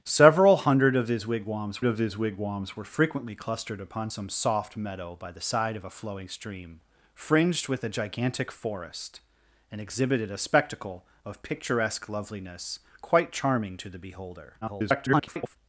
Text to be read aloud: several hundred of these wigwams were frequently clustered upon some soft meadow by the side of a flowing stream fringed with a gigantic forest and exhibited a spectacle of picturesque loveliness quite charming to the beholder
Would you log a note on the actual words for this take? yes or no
yes